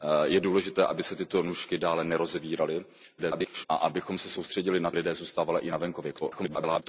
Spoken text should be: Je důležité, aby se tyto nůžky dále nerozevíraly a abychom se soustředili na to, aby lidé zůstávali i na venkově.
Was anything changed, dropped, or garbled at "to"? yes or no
yes